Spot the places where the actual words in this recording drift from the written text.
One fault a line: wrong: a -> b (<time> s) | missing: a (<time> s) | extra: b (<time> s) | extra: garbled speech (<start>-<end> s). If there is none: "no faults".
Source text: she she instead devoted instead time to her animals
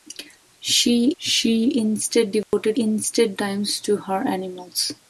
no faults